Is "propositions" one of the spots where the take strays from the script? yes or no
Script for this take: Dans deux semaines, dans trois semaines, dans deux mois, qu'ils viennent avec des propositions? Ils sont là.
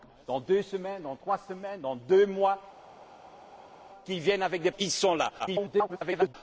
yes